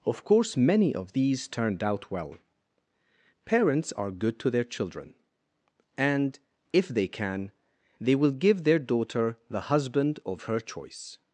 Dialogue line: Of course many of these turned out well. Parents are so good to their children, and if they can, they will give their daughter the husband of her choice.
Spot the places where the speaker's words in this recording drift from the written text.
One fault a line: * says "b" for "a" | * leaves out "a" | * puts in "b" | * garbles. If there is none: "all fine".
* leaves out "so"